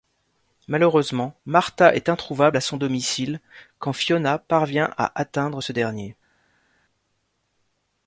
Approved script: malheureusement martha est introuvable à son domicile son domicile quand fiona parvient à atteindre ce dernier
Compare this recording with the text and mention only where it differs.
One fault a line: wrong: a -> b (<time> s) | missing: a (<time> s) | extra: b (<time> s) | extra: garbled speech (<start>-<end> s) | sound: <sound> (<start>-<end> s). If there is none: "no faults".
missing: son domicile (3.4 s)